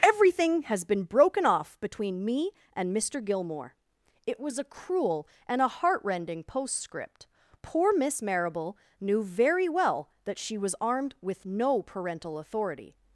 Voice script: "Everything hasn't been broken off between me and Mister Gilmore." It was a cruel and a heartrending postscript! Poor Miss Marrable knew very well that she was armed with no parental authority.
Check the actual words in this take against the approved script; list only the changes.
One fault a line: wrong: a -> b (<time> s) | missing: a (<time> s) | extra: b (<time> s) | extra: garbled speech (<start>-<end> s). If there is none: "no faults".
wrong: hasn't -> has (0.6 s)